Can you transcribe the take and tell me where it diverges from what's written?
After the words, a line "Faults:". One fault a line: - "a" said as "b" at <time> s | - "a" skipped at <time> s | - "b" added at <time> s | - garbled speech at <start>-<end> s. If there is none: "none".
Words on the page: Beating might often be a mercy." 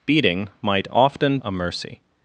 Beating might often a mercy."
Faults:
- "be" skipped at 1.4 s